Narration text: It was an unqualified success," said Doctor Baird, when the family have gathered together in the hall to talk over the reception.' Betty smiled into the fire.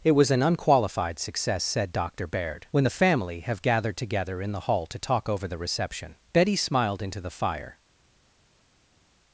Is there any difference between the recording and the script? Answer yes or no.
no